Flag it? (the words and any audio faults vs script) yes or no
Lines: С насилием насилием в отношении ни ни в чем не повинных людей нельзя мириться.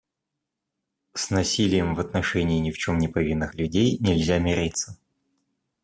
yes